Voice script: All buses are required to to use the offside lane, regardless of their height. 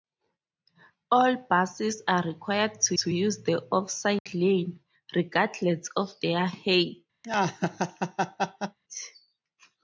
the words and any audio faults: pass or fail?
fail